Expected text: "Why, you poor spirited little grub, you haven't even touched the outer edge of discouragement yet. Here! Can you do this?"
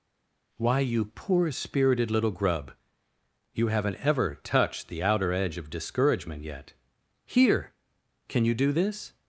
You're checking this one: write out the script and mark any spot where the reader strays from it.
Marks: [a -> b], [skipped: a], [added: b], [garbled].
"Why, you poor spirited little grub, you haven't [even -> ever] touched the outer edge of discouragement yet. Here! Can you do this?"